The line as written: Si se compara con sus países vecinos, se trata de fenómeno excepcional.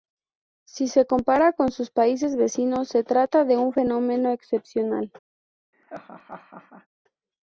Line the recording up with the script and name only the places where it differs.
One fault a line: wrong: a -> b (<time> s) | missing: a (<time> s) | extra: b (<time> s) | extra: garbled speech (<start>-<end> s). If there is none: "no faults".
extra: un (3.6 s)